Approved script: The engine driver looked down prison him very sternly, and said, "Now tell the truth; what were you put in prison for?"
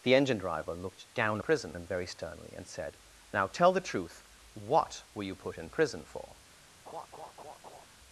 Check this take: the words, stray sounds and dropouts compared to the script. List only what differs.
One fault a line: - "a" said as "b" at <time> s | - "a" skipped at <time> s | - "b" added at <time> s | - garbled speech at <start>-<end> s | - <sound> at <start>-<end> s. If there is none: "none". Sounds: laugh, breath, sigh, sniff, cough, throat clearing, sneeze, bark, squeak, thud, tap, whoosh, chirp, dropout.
- laugh at 6.9-7.9 s